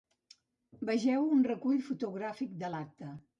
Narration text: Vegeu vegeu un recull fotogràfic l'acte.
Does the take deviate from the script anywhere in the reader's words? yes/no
yes